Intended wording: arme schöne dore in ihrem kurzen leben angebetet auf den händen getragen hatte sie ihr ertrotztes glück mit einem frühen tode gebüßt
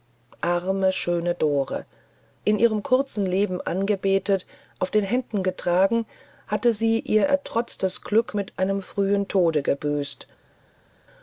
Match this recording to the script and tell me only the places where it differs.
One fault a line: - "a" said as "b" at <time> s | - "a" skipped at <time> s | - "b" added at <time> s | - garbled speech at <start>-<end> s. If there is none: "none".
none